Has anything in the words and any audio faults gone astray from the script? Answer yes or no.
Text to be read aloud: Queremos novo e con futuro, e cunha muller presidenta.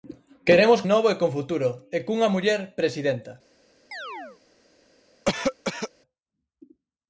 yes